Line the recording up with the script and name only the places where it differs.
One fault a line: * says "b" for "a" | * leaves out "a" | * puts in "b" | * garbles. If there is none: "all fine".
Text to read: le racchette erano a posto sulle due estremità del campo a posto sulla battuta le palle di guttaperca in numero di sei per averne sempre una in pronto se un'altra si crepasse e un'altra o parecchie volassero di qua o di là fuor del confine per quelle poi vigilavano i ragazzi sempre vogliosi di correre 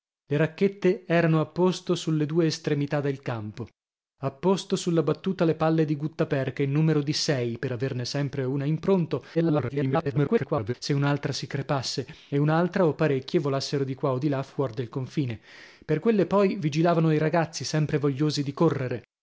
* garbles